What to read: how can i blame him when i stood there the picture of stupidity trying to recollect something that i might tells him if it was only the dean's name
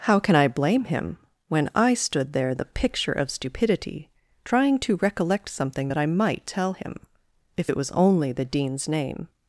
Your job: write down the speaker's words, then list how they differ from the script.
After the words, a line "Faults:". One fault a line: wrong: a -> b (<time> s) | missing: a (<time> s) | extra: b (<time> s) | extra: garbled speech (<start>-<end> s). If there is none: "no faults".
how can i blame him when i stood there the picture of stupidity trying to recollect something that i might tell him if it was only the dean's name
Faults:
wrong: tells -> tell (6.5 s)